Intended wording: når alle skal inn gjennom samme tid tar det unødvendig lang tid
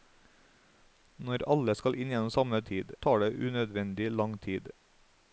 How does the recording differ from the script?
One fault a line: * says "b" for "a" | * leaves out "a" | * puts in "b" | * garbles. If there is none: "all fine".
all fine